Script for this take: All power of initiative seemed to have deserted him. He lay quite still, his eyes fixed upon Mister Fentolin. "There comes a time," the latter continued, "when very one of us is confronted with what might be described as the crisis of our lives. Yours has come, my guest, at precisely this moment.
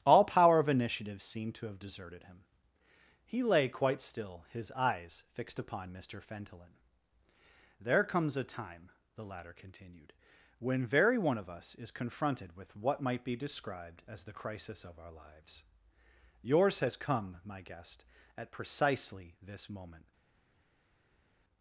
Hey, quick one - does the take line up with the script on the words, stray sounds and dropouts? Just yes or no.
yes